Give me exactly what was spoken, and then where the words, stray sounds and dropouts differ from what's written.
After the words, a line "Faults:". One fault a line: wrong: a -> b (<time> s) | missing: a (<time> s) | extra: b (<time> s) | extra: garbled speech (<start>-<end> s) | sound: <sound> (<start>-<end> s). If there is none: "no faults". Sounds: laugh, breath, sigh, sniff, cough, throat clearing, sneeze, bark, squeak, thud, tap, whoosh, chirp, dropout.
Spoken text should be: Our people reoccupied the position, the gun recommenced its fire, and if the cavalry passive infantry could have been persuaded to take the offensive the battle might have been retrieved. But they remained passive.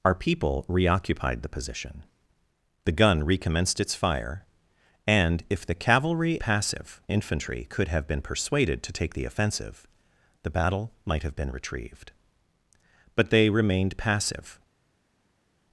Our people reoccupied the position, the gun recommenced its fire, and if the cavalry passive infantry could have been persuaded to take the offensive the battle might have been retrieved. But they remained passive.
Faults:
no faults